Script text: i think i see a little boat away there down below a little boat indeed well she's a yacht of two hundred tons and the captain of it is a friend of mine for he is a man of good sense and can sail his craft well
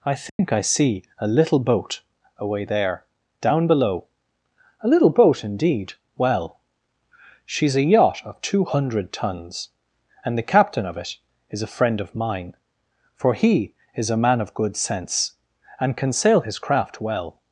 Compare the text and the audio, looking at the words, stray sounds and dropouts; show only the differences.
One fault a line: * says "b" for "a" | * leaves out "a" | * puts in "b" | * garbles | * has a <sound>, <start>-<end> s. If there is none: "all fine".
* has a dropout, 0.3-0.4 s